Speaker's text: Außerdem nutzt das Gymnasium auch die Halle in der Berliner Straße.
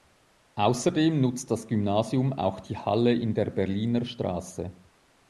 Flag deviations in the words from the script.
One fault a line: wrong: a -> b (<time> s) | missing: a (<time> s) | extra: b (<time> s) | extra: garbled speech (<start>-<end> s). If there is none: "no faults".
no faults